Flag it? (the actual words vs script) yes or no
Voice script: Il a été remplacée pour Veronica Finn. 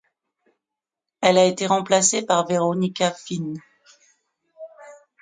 yes